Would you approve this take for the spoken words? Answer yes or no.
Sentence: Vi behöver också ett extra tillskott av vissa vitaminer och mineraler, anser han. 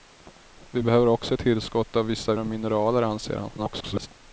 no